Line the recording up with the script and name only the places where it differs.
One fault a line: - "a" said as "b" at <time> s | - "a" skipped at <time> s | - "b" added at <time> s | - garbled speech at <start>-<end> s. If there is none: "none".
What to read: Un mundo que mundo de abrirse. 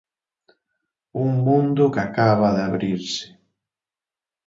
- "mundo" said as "acaba" at 2.1 s